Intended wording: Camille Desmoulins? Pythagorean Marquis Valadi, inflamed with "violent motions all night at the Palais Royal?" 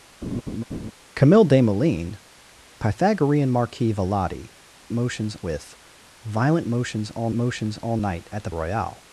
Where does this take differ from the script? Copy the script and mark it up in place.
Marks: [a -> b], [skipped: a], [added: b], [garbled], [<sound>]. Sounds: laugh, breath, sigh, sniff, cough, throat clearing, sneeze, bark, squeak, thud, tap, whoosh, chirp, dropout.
[laugh] Camille Desmoulins? Pythagorean Marquis Valadi, [inflamed -> motions] with "violent motions all [added: motions all] night at the [skipped: Palais] Royal?"